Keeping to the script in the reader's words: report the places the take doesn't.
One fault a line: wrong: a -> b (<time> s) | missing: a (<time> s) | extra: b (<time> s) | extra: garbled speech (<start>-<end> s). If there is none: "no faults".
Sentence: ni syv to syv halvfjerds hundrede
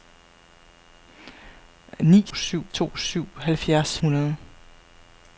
no faults